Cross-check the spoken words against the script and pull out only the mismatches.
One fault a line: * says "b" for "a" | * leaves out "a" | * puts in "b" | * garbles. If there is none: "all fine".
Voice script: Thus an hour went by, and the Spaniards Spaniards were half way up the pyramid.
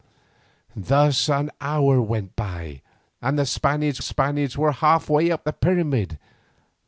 all fine